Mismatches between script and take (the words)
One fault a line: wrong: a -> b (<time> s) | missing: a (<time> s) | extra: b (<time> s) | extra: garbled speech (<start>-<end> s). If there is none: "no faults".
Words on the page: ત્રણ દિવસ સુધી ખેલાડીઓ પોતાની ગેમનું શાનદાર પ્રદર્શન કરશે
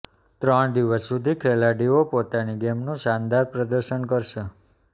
no faults